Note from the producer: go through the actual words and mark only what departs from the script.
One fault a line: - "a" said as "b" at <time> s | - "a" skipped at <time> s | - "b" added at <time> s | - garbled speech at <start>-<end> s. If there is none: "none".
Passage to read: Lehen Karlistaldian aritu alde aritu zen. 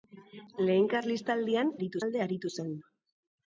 none